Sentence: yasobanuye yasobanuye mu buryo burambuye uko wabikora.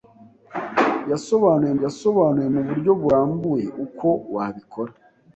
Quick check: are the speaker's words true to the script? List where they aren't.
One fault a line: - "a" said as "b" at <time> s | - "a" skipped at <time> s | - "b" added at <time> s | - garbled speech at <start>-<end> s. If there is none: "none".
none